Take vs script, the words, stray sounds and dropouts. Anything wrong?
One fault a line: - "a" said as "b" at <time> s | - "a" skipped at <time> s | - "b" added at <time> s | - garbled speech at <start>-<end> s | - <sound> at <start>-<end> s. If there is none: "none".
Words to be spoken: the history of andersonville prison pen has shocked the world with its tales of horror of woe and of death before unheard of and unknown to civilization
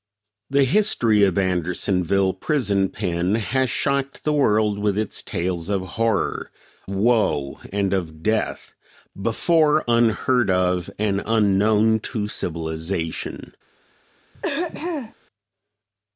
- "of" skipped at 6.5 s
- throat clearing at 14.3-15.1 s